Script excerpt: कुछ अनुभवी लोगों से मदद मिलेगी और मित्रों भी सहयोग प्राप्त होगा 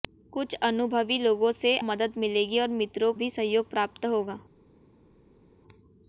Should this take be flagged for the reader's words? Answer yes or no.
no